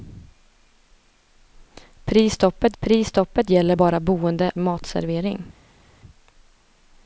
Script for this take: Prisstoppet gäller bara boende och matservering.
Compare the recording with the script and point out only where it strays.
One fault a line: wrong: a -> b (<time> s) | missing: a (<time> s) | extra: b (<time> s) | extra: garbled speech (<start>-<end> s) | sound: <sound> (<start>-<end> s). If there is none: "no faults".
extra: prisstoppet (2.8 s)
missing: och (4.5 s)